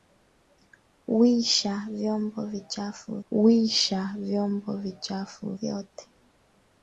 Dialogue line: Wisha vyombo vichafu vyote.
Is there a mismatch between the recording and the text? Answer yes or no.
yes